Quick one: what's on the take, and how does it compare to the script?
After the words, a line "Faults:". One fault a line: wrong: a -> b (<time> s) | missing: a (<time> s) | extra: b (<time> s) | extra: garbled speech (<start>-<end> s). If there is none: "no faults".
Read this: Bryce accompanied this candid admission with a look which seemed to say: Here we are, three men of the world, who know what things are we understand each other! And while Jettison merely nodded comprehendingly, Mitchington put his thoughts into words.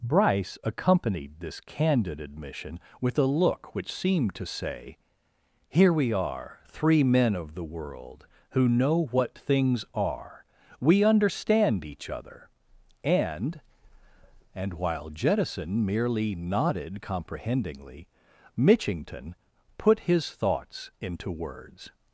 Bryce accompanied this candid admission with a look which seemed to say: Here we are, three men of the world, who know what things are we understand each other! And And while Jettison merely nodded comprehendingly, Mitchington put his thoughts into words.
Faults:
extra: And (14.6 s)